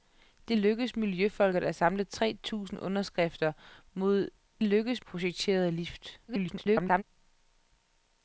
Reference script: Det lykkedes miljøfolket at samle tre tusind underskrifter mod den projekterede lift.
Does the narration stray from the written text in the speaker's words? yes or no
yes